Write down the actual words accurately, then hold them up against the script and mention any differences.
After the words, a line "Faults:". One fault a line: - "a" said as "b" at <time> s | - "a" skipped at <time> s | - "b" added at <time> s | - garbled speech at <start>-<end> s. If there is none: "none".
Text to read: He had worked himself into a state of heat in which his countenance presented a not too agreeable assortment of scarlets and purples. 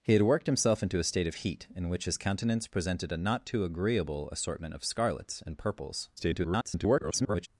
He had worked himself into a state of heat in which his countenance presented a not too agreeable assortment of scarlets and purples. [garbled]
Faults:
- garbled speech at 6.2-7.5 s